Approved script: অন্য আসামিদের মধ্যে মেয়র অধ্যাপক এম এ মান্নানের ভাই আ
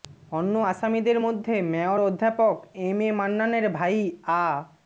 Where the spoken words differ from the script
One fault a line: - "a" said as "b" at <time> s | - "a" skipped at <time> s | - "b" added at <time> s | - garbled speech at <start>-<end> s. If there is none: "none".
none